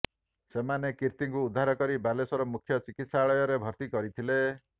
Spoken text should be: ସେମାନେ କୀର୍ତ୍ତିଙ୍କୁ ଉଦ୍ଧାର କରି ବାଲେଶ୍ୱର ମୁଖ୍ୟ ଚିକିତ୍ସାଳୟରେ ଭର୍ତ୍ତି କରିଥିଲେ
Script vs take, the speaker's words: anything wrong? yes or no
no